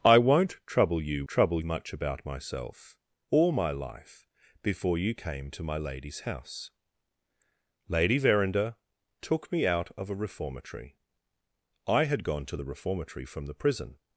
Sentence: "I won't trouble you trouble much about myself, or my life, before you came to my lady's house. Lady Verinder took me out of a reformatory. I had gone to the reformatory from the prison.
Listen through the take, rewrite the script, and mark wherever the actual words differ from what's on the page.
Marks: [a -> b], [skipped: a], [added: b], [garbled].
"I won't trouble you trouble much about myself, or my life, before you came to my lady's house. Lady Verinder took me out of a reformatory. I had gone to the reformatory from the prison.